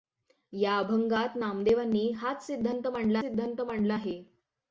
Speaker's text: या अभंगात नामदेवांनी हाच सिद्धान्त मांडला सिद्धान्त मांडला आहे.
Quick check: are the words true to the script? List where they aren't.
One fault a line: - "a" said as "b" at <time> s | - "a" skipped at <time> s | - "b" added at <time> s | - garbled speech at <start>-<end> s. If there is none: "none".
none